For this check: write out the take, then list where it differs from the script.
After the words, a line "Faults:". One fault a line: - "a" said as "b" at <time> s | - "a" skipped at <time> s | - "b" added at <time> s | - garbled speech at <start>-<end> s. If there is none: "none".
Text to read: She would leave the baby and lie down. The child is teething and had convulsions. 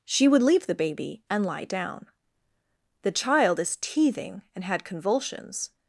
She would leave the baby and lie down. The child is teething and had convulsions.
Faults:
none